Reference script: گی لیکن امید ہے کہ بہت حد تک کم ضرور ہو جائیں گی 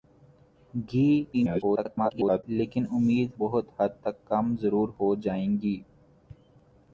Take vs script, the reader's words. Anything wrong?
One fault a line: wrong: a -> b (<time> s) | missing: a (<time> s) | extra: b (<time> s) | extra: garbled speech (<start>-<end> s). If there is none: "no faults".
extra: garbled speech (1.3-2.4 s)
missing: ہے کہ (3.3 s)